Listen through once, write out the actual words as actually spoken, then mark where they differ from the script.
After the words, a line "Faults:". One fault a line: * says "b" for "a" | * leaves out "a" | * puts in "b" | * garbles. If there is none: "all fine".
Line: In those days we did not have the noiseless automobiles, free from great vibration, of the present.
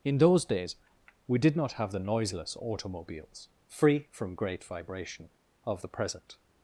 In those days we did not have the noiseless automobiles, free from great vibration, of the present.
Faults:
all fine